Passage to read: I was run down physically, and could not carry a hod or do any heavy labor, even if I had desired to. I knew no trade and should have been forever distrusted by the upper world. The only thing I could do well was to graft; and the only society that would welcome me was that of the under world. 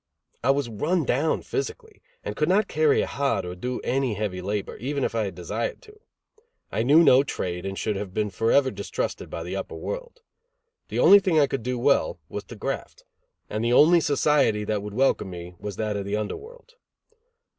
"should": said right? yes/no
yes